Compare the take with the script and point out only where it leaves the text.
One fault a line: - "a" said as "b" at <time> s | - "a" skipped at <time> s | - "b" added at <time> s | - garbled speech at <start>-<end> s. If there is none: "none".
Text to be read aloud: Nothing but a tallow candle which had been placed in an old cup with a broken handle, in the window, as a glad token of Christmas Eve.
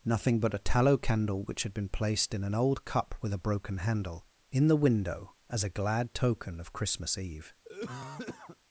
none